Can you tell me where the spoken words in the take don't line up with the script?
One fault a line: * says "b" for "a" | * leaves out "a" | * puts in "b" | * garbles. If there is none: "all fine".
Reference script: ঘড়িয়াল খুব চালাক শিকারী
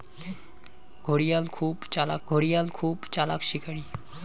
* puts in "ঘড়িয়াল খুব চালাক"